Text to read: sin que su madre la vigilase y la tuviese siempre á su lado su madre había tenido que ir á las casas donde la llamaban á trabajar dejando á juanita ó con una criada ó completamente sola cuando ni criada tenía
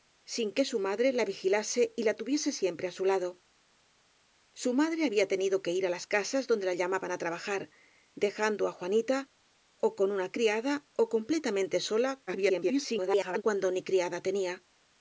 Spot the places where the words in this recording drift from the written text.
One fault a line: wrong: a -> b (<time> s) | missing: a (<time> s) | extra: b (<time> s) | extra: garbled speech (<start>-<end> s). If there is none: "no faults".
extra: garbled speech (12.3-13.4 s)